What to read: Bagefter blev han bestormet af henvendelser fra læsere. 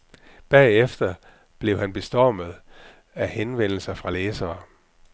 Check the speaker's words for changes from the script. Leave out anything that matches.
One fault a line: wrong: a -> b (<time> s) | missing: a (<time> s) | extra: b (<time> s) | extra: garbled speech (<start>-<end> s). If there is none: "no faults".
no faults